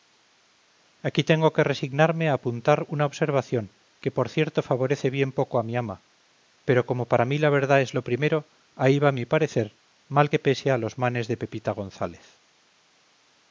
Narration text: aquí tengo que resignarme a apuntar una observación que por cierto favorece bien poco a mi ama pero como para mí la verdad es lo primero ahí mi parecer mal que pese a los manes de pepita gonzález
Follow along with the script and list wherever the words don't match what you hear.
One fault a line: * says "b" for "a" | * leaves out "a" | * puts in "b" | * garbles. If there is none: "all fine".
* puts in "va"